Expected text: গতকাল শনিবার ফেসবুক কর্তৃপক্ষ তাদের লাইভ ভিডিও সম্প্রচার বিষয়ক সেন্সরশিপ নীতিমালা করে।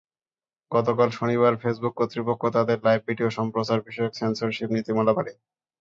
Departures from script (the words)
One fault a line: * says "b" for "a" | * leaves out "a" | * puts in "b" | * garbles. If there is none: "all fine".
all fine